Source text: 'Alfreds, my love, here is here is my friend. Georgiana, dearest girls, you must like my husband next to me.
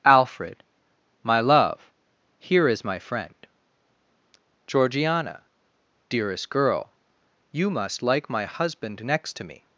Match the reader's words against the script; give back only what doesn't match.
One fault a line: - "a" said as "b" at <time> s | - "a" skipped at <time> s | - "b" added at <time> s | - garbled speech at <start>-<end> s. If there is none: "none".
- "Alfreds" said as "Alfred" at 0.0 s
- "here is" skipped at 2.8 s
- "girls" said as "girl" at 6.5 s